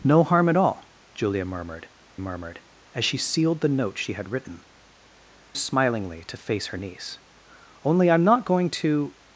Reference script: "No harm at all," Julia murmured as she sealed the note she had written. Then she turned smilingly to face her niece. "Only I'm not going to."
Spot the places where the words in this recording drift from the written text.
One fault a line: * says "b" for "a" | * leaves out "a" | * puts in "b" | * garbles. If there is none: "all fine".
* puts in "murmured"
* leaves out "Then she turned"